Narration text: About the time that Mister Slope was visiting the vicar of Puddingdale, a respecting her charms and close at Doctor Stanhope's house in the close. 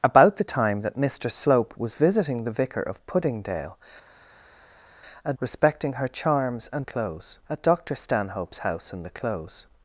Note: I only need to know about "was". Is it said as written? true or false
true